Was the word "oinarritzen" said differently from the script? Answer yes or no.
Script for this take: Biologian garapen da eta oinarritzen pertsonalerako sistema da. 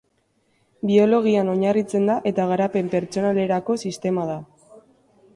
yes